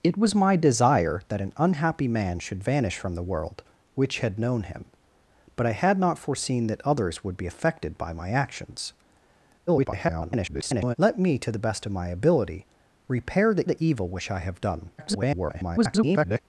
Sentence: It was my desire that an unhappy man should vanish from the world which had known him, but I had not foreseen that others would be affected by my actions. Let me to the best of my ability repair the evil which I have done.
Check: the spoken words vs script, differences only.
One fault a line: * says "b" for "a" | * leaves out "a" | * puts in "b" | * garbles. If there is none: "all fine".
* garbles
* puts in "the"
* garbles